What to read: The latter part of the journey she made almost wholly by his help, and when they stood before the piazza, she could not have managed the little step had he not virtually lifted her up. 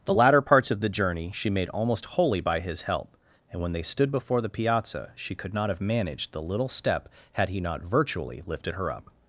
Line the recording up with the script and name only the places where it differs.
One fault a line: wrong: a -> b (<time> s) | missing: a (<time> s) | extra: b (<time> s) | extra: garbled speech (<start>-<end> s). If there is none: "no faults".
wrong: part -> parts (0.4 s)